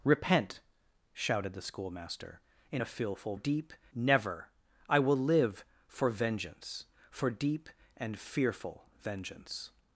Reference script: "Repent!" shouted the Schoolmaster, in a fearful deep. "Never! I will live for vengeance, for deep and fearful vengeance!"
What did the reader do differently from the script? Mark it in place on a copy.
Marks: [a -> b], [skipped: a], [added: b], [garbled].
"Repent!" shouted the Schoolmaster, in a fearful deep. "Never! I will live for vengeance, for deep and fearful vengeance!"